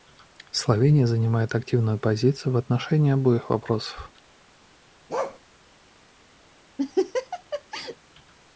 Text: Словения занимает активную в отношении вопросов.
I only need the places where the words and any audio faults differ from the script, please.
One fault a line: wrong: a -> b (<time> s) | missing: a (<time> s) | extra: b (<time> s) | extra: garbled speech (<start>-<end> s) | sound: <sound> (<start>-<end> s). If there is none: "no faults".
extra: позицию (2.0 s)
extra: обоих (3.1 s)
sound: bark (5.1-5.4 s)
sound: laugh (6.8-8.0 s)